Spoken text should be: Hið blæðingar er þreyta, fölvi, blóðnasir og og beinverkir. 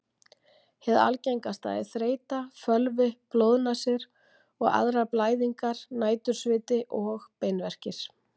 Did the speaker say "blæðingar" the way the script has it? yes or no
no